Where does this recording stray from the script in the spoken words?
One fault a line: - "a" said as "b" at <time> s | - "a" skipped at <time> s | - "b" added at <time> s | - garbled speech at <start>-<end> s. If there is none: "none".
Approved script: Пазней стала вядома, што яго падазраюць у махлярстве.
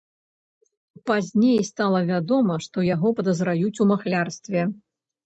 none